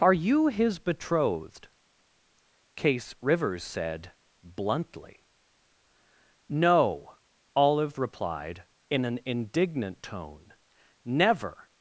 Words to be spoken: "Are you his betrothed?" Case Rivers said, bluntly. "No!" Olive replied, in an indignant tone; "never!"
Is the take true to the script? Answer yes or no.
yes